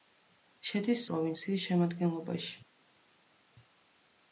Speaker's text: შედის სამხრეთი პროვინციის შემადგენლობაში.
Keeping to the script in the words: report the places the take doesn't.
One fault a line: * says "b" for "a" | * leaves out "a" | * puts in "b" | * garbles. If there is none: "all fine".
* leaves out "სამხრეთი"